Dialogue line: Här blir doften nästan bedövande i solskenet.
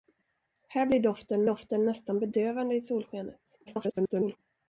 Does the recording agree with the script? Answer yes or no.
no